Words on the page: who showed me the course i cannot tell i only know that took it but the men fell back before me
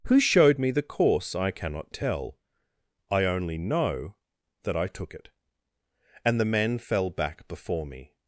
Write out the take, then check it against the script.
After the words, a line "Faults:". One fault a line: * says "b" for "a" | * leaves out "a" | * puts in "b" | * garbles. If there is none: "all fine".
who showed me the course i cannot tell i only know that i took it and the men fell back before me
Faults:
* puts in "i"
* says "and" for "but"